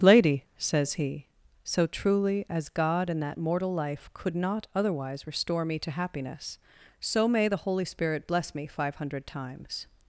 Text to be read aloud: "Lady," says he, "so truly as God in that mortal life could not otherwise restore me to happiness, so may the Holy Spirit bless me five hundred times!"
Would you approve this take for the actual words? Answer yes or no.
yes